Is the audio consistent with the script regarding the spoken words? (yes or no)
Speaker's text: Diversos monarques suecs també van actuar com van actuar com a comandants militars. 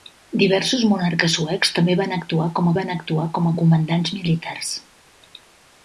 yes